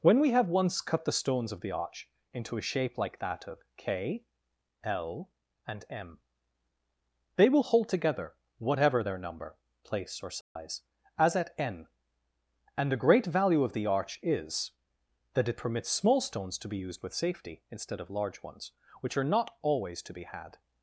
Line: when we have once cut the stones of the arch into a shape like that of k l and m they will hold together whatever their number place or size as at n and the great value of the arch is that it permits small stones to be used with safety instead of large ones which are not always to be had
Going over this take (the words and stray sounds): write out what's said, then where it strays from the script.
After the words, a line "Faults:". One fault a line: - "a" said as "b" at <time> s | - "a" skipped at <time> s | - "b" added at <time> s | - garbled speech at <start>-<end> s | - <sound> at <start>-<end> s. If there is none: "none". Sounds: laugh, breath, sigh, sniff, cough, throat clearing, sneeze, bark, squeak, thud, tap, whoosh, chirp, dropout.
when we have once cut the stones of the arch into a shape like that of k l and m they will hold together whatever their number place or size as at n and the great value of the arch is that it permits small stones to be used with safety instead of large ones which are not always to be had
Faults:
- dropout at 10.4-10.6 s